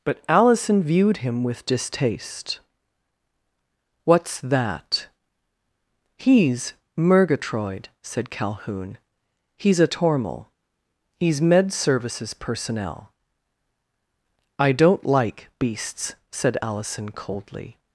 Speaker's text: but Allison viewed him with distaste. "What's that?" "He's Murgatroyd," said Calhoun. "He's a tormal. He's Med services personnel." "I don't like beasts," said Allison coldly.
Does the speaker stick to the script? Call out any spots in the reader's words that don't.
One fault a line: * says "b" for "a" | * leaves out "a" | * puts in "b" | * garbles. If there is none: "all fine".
all fine